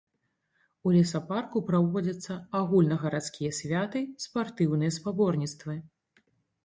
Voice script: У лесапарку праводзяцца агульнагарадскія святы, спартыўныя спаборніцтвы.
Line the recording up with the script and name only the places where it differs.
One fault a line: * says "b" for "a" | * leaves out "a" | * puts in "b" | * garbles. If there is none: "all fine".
all fine